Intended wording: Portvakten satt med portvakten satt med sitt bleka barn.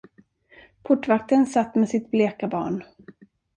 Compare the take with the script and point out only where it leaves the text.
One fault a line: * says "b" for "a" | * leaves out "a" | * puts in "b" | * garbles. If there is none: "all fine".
* leaves out "portvakten satt med"